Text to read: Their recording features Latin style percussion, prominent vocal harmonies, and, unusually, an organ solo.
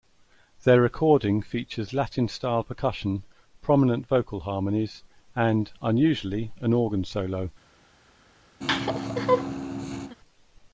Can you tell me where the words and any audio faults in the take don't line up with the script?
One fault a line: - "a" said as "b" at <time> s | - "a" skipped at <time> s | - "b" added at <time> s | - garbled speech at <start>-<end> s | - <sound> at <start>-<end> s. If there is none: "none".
- laugh at 8.6-10.1 s